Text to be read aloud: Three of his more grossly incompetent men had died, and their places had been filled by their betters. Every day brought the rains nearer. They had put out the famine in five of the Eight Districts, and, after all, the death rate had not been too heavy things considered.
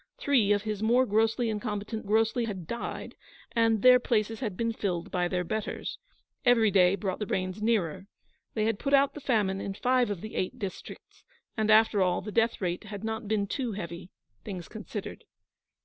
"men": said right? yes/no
no